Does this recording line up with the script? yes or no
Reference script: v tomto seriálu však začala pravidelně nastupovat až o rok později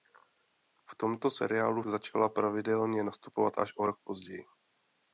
no